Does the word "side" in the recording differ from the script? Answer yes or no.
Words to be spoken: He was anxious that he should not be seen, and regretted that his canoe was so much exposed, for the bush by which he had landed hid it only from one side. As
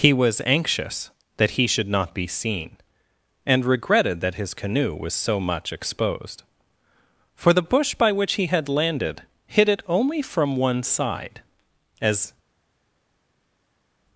no